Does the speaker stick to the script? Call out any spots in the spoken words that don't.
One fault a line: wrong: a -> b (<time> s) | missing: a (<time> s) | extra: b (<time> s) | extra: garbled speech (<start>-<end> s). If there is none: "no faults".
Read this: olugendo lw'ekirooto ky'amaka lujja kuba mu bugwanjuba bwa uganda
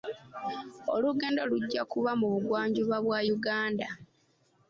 missing: lw'ekirooto ky'amaka (1.4 s)